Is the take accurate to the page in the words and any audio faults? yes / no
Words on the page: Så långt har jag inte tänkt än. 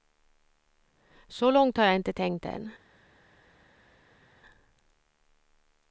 yes